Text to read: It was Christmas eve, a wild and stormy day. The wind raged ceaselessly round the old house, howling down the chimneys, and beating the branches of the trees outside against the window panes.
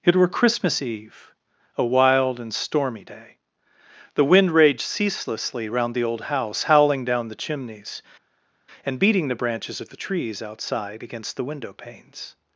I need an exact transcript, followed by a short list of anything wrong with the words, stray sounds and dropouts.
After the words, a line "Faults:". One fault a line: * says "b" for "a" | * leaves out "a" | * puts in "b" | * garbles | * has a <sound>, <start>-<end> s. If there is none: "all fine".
It were Christmas eve, a wild and stormy day. The wind raged ceaselessly round the old house, howling down the chimneys, and beating the branches of the trees outside against the window panes.
Faults:
* says "were" for "was"